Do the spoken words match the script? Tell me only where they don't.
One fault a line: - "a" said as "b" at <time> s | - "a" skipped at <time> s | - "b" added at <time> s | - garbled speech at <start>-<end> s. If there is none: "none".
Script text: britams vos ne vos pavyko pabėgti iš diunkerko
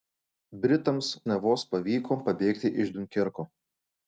- "vos" skipped at 1.1 s